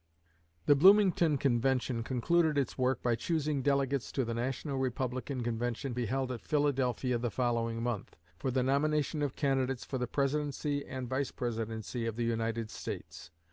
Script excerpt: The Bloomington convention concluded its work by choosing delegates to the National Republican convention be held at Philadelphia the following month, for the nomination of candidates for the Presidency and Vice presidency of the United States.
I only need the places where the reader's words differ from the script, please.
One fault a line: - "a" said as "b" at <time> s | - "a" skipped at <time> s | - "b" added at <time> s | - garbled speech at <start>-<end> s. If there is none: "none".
none